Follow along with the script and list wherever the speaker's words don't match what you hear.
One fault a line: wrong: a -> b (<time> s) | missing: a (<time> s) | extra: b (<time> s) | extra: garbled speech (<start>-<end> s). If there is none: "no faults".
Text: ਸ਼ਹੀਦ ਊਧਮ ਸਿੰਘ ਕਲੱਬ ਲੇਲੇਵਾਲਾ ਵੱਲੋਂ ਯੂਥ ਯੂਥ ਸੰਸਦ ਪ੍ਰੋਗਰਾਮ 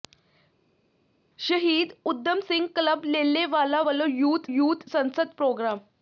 no faults